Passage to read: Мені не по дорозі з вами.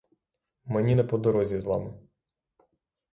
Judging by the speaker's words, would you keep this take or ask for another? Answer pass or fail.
pass